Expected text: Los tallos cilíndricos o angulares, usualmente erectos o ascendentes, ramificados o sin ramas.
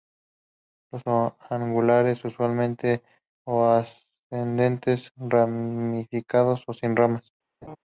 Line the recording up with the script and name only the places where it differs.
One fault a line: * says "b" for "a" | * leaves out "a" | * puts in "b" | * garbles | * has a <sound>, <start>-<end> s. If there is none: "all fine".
* leaves out "tallos cilíndricos"
* leaves out "erectos"
* has a laugh, 7.6-7.8 s